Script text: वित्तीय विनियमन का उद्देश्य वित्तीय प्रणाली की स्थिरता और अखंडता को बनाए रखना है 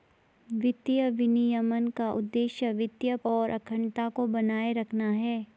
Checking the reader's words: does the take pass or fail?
fail